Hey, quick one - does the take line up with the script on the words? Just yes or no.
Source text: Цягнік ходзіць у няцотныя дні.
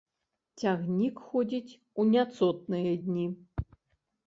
yes